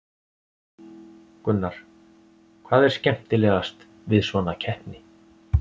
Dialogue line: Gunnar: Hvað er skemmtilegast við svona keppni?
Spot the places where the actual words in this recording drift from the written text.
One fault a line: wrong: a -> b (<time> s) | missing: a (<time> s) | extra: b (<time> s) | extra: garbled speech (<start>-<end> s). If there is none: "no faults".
no faults